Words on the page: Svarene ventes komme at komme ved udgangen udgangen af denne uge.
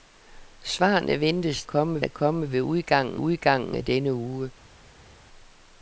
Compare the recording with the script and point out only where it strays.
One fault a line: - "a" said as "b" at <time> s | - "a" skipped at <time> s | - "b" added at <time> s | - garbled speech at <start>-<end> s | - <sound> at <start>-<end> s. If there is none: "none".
none